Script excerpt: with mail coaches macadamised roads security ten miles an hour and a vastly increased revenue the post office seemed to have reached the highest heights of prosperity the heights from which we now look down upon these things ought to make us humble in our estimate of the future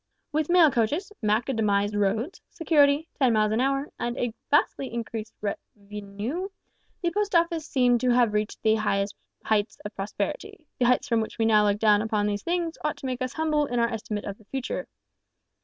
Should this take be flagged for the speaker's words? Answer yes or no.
no